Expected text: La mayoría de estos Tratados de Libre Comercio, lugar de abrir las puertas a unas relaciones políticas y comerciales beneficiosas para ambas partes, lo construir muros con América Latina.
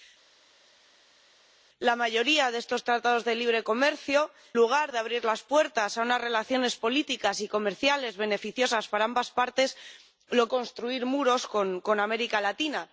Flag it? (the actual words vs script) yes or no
no